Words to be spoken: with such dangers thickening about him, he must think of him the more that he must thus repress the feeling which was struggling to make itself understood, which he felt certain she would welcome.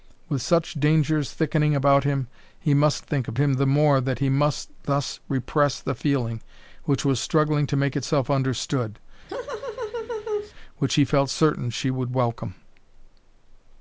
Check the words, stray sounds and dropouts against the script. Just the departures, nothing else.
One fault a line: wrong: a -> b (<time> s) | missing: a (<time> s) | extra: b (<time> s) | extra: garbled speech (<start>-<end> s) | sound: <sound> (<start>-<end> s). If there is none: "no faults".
sound: laugh (9.3-10.5 s)